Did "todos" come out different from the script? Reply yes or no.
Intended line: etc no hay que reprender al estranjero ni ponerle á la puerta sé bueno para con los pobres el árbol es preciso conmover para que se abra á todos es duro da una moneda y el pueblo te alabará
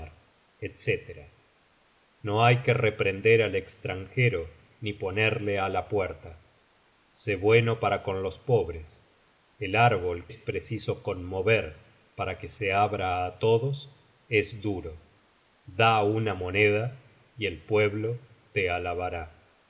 no